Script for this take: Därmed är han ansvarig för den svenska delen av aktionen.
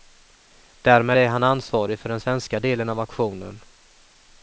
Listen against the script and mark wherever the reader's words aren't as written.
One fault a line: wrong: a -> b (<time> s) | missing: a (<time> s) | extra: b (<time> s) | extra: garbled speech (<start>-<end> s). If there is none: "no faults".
no faults